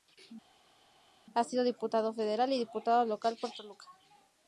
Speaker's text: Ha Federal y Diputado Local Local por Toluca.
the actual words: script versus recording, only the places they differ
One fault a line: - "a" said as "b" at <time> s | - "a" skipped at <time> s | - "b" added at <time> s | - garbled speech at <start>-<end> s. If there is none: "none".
- "sido Diputado" added at 1.4 s
- "Local" skipped at 3.4 s